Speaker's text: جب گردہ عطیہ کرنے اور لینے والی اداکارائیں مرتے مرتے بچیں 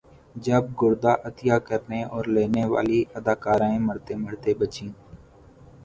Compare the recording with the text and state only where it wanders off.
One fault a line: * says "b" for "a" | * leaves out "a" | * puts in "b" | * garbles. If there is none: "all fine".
all fine